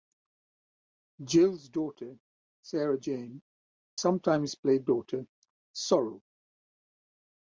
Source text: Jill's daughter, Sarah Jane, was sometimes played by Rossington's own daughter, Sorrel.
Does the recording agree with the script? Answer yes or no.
no